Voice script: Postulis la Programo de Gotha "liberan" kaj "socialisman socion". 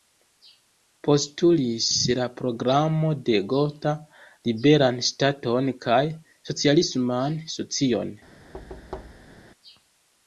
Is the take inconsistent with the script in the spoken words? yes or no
yes